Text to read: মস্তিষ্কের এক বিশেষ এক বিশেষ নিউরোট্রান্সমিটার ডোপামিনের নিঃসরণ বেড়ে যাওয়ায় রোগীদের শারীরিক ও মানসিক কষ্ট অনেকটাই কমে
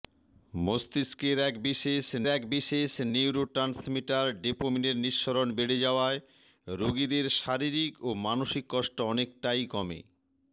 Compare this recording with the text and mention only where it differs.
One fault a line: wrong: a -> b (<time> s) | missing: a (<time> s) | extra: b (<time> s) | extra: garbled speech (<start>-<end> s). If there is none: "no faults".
no faults